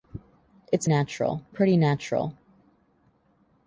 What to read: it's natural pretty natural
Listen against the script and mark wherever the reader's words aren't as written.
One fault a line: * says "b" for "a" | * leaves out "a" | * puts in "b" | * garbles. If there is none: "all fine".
all fine